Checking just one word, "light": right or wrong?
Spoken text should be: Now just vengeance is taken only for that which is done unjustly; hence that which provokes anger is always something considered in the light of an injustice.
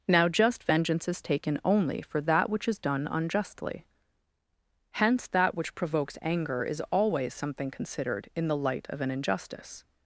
right